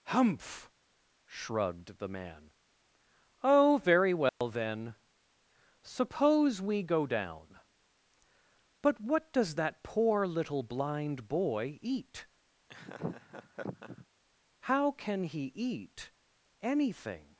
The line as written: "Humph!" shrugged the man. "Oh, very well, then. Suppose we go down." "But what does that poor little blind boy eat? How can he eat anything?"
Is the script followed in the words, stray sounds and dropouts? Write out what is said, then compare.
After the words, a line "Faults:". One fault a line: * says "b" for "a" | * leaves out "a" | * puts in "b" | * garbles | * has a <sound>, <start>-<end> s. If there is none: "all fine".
"Humph!" shrugged the man. "Oh, very well, then. Suppose we go down." "But what does that poor little blind boy eat? How can he eat anything?"
Faults:
* has a dropout, 4.3-4.4 s
* has a laugh, 12.7-14.1 s